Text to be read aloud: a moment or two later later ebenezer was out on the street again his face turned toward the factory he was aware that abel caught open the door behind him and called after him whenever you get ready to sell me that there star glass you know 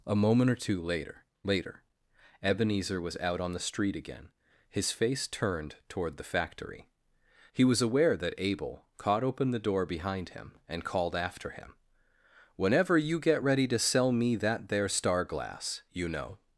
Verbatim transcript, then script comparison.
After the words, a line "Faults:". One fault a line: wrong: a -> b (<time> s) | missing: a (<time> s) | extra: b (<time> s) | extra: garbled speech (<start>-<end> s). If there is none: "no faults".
a moment or two later later ebenezer was out on the street again his face turned toward the factory he was aware that abel caught open the door behind him and called after him whenever you get ready to sell me that there star glass you know
Faults:
no faults